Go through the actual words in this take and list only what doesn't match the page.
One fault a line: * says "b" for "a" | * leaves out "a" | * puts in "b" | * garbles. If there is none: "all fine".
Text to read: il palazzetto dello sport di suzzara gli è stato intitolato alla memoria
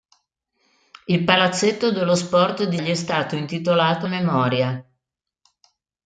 * leaves out "suzzara"
* leaves out "alla"